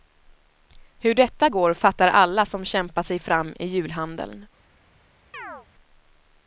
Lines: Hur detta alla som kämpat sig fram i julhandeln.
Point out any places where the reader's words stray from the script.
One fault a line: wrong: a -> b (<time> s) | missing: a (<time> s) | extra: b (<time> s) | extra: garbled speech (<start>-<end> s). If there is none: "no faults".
extra: går fattar (1.5 s)